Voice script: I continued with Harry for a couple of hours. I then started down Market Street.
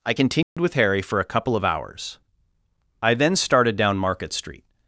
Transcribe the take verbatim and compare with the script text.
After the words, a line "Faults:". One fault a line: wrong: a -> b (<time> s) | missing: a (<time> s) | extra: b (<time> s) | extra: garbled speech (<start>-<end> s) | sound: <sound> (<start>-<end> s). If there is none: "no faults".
I continued with Harry for a couple of hours. I then started down Market Street.
Faults:
sound: dropout (0.4-0.6 s)